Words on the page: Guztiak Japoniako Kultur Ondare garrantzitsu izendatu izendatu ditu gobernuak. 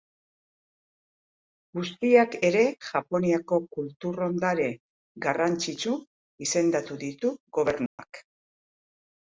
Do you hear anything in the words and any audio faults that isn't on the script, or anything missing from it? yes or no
yes